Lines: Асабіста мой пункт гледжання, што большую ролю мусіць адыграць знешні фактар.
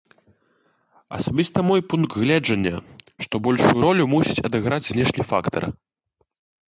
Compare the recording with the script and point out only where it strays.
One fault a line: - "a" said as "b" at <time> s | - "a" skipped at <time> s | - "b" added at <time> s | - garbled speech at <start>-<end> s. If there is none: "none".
none